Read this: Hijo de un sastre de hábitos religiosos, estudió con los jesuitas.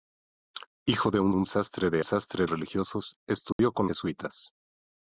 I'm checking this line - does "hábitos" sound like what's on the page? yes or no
no